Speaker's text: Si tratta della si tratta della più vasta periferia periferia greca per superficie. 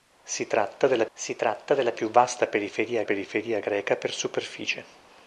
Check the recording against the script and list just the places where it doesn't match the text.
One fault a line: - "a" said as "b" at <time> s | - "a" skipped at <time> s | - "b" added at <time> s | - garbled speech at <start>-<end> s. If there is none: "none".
none